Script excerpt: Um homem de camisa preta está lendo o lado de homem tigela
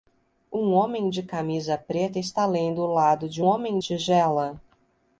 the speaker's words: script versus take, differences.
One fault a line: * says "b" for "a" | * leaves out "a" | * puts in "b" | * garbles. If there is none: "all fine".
all fine